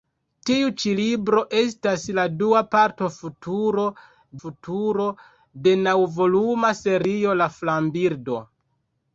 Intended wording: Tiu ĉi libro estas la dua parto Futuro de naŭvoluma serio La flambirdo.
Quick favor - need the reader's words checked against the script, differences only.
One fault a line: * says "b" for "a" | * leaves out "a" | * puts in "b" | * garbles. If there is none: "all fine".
* puts in "Futuro"